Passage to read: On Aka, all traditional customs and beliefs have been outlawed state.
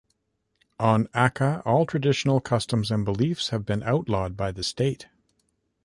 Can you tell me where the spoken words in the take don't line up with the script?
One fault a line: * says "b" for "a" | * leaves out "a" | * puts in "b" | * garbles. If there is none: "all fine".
* puts in "by the"